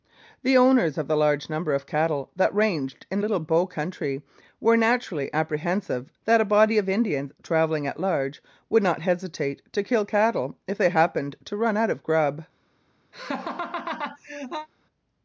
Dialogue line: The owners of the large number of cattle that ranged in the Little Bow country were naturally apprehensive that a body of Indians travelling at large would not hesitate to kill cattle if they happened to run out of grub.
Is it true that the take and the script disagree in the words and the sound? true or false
true